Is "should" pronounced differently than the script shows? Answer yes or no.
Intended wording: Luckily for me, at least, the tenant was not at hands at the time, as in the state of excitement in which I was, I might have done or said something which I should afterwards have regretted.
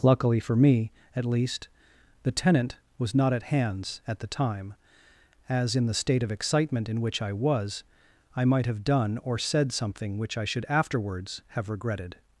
no